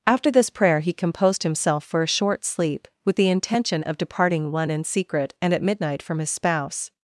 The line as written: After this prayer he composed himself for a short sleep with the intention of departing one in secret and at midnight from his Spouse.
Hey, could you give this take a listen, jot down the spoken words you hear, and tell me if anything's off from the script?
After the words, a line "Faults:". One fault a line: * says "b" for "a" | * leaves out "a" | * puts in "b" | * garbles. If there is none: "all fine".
After this prayer he composed himself for a short sleep with the intention of departing one in secret and at midnight from his Spouse.
Faults:
all fine